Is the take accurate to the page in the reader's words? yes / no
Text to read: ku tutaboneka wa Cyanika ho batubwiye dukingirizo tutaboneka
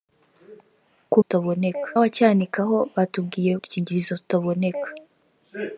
yes